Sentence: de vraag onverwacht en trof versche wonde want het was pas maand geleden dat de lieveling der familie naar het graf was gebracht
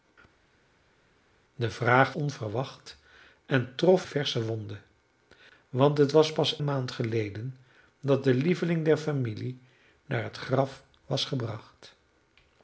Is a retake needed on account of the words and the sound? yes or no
no